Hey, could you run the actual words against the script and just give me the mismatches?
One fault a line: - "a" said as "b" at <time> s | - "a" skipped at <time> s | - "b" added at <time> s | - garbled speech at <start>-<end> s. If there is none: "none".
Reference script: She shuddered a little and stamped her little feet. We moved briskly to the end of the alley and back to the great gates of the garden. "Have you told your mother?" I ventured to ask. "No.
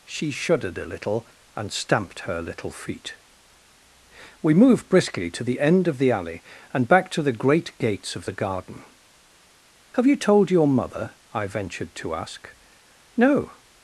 none